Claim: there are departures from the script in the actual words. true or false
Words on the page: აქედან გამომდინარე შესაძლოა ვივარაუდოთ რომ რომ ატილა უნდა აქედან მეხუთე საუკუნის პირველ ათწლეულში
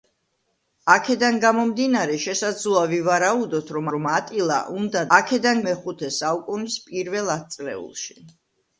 false